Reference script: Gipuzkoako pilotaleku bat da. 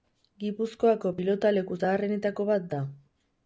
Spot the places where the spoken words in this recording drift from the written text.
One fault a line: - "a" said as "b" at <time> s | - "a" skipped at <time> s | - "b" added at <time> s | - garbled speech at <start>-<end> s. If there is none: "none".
- "zaharrenetako" added at 1.8 s